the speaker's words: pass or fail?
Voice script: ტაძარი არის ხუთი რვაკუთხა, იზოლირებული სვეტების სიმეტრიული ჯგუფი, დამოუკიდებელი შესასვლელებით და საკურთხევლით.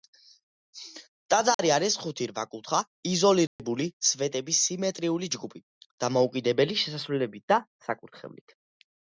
pass